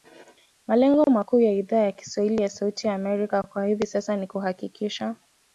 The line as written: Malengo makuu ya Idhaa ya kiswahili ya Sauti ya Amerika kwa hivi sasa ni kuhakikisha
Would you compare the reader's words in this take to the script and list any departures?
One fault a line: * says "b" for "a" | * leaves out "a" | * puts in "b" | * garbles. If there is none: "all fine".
all fine